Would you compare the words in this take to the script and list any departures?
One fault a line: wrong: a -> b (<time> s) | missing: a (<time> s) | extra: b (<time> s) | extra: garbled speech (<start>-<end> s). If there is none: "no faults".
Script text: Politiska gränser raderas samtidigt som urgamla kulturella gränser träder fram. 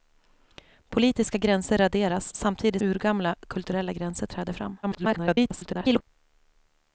missing: som (2.8 s)
extra: garbled speech (4.8-6.0 s)